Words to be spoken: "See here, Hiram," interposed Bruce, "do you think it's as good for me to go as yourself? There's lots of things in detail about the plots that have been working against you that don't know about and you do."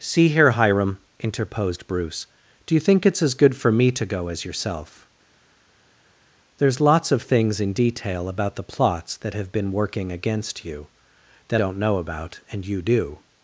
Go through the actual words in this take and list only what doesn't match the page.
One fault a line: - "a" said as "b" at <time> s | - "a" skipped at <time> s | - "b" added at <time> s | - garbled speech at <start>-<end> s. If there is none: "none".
none